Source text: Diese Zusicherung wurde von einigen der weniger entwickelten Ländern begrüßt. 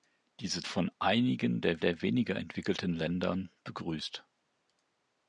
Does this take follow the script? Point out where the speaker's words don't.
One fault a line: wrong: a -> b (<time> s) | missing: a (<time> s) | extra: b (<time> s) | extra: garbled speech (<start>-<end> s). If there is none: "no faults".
missing: Zusicherung wurde (0.6 s)
extra: der (1.8 s)